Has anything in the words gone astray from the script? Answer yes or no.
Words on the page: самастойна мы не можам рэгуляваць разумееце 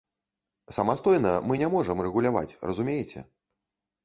no